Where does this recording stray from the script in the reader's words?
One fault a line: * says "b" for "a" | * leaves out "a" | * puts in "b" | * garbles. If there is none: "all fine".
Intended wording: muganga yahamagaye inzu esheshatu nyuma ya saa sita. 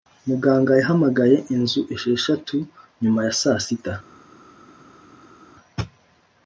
all fine